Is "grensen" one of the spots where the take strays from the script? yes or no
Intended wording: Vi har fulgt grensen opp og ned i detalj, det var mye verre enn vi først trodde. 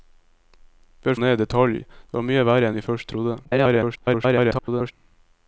yes